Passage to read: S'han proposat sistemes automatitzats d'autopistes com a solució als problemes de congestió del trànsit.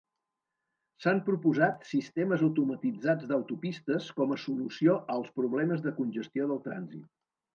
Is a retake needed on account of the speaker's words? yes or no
no